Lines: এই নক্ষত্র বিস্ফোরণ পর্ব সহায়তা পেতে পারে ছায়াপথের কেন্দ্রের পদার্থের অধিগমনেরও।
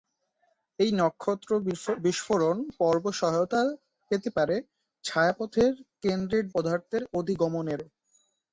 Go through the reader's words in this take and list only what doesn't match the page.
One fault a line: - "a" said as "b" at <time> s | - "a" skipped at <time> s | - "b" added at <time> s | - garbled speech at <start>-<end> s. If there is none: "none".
none